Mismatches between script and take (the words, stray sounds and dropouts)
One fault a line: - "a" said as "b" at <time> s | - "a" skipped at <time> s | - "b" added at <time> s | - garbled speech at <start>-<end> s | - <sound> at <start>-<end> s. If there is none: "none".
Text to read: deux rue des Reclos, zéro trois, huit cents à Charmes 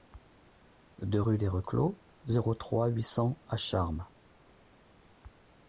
none